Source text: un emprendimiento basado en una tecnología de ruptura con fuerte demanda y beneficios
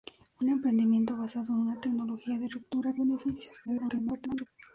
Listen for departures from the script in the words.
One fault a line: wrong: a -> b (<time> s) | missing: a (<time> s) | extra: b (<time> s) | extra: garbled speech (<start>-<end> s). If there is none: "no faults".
missing: con fuerte demanda (2.9 s)
extra: garbled speech (3.7-4.5 s)